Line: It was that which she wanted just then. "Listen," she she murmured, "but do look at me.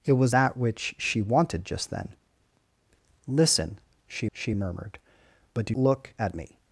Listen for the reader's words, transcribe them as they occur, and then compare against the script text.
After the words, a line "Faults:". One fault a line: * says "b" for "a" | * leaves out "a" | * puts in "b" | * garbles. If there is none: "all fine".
It was that which she wanted just then. "Listen," she she murmured, "but do look at me.
Faults:
all fine